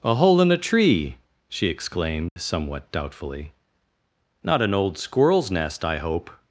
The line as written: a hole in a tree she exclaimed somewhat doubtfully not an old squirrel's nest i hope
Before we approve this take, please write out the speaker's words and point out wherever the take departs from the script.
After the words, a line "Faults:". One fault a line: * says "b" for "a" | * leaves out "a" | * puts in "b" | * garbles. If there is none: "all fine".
a hole in a tree she exclaimed somewhat doubtfully not an old squirrel's nest i hope
Faults:
all fine